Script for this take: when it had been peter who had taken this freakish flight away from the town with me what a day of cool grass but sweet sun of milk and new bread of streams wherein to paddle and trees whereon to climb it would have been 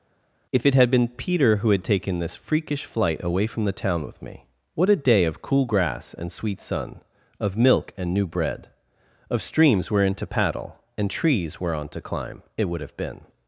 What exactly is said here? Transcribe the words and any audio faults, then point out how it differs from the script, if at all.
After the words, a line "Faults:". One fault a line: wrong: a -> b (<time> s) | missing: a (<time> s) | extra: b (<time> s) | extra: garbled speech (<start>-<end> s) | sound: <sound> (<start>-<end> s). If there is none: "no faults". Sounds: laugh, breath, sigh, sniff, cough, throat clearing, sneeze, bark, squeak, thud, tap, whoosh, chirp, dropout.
if it had been peter who had taken this freakish flight away from the town with me what a day of cool grass and sweet sun of milk and new bread of streams wherein to paddle and trees whereon to climb it would have been
Faults:
wrong: when -> if (0.5 s)
wrong: but -> and (6.1 s)